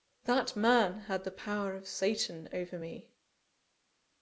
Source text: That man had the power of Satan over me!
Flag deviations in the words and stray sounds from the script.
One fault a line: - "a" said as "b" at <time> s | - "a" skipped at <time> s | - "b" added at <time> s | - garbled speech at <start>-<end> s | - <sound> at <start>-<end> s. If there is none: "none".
none